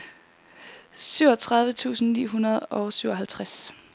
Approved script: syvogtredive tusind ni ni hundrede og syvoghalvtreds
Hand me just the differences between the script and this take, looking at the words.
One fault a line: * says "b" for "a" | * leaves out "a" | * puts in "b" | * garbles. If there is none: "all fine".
* leaves out "ni"